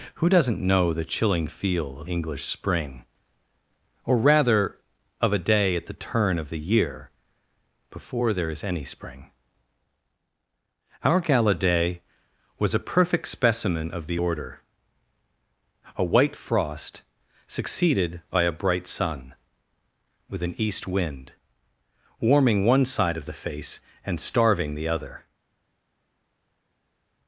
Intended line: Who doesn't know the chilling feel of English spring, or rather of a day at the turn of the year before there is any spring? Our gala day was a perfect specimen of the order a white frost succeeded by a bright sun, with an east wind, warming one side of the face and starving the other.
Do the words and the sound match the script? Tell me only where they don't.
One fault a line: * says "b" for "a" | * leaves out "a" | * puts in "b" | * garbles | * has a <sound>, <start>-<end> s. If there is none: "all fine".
all fine